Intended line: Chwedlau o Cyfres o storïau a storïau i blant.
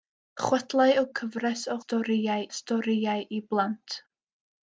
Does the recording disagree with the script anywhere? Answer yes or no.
no